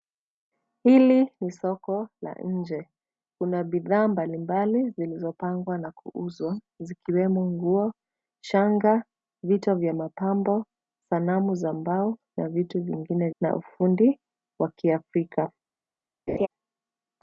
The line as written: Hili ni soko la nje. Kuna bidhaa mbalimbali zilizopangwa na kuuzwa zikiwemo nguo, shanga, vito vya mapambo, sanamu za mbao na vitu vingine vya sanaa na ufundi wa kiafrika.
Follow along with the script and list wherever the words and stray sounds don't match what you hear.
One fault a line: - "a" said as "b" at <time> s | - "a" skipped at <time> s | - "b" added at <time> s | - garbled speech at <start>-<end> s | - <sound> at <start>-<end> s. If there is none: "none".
- "vya sanaa" skipped at 13.3 s
- laugh at 16.3-16.5 s